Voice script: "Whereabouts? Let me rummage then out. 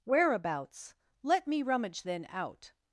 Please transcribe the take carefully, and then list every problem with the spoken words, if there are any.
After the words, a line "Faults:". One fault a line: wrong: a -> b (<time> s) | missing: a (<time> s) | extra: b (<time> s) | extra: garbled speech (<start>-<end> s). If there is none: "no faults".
"Whereabouts? Let me rummage then out.
Faults:
no faults